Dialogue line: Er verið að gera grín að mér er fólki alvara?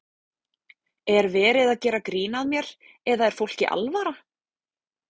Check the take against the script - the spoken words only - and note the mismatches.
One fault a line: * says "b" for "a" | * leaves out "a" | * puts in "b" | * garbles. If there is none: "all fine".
* puts in "eða"